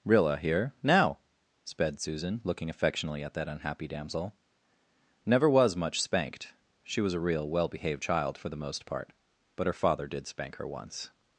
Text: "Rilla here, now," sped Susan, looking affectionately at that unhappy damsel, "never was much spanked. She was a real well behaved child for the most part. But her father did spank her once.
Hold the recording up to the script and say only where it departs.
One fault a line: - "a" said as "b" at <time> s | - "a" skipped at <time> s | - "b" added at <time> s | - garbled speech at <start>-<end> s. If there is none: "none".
none